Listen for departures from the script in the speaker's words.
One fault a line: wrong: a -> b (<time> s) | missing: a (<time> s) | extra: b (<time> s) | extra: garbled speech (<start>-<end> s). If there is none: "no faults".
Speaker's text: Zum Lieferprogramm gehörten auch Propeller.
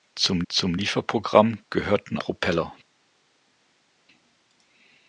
extra: zum (0.5 s)
missing: auch (2.2 s)